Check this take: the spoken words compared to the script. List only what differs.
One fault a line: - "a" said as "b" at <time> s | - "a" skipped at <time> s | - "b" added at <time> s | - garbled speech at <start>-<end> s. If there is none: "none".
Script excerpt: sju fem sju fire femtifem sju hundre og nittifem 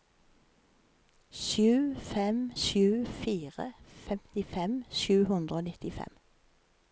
none